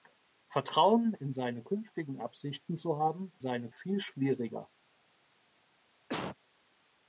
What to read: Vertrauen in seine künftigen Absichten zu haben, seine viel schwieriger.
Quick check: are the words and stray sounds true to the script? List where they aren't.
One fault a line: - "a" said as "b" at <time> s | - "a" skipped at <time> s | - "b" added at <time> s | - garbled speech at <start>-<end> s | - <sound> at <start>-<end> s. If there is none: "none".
- cough at 6.1-6.4 s